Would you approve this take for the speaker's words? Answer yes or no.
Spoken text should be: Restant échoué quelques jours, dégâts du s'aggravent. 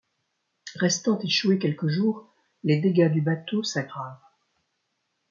no